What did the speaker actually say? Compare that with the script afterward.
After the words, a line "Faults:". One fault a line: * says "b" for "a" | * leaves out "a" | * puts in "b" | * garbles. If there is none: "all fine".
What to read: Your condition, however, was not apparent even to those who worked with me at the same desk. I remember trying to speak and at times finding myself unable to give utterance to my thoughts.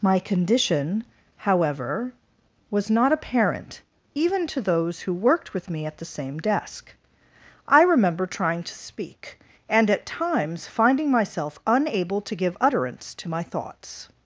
My condition, however, was not apparent even to those who worked with me at the same desk. I remember trying to speak and at times finding myself unable to give utterance to my thoughts.
Faults:
* says "My" for "Your"